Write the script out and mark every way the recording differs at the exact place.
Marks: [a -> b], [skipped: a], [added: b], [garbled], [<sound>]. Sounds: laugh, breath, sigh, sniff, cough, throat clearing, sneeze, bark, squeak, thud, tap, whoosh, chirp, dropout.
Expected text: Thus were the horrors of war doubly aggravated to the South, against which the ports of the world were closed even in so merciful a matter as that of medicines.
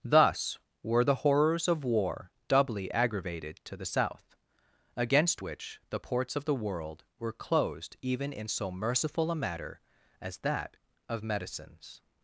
Thus were the horrors of war doubly aggravated to the South, against which the ports of the world were closed even in so merciful a matter as that of medicines.